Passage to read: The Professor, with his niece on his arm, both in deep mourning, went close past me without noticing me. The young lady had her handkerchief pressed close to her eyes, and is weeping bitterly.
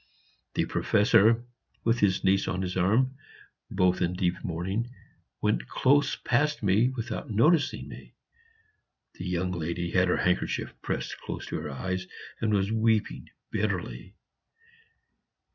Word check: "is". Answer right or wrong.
wrong